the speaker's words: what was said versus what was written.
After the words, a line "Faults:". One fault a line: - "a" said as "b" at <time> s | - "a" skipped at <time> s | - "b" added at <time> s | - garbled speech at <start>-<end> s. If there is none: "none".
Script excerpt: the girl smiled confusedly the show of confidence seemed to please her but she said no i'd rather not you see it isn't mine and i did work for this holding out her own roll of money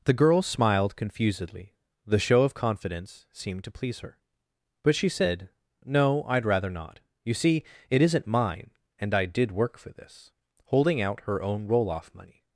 the girl smiled confusedly the show of confidence seemed to please her but she said no i'd rather not you see it isn't mine and i did work for this holding out her own roll off money
Faults:
- "of" said as "off" at 11.9 s